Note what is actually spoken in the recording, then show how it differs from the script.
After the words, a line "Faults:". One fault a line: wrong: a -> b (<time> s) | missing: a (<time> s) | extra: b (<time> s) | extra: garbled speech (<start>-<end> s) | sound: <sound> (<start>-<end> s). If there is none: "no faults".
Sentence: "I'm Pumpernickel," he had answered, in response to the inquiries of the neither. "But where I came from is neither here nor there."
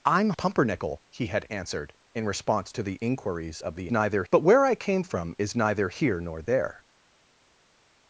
"I'm Pumpernickel," he had answered, in response to the inquiries of the neither. "But where I came from is neither here nor there."
Faults:
no faults